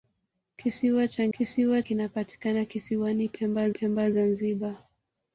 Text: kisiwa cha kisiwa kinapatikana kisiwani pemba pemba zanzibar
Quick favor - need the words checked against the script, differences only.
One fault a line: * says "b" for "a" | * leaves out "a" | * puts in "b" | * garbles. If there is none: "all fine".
all fine